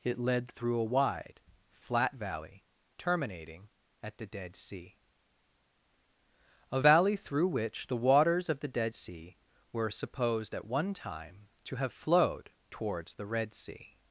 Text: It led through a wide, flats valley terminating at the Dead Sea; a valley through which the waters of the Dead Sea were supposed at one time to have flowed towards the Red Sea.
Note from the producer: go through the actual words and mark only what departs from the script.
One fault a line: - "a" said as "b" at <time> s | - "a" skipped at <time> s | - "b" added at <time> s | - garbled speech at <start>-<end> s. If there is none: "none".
- "flats" said as "flat" at 1.7 s